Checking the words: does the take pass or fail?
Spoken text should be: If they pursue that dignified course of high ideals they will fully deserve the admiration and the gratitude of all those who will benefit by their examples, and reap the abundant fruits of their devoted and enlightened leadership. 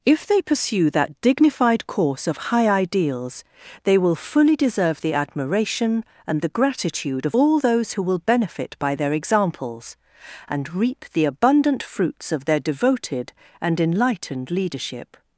pass